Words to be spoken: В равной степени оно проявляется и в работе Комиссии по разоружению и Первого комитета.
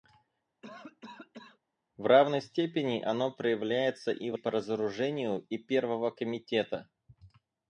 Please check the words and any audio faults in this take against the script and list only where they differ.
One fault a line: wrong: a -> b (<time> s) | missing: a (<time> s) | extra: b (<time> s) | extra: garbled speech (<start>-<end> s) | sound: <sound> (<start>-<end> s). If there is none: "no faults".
sound: cough (0.6-1.6 s)
missing: работе Комиссии (4.3 s)